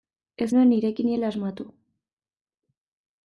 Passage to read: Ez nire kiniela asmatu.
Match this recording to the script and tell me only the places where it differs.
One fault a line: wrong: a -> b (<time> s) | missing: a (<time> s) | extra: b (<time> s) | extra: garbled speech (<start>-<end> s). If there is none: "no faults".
extra: nuen (0.5 s)